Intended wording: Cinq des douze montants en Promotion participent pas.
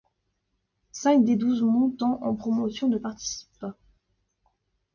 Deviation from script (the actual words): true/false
true